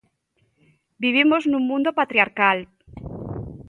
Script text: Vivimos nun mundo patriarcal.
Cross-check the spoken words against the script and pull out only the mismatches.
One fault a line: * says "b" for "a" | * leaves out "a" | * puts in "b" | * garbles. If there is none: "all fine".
all fine